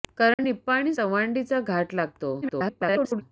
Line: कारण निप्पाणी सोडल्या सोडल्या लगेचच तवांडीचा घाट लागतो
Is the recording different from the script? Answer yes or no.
yes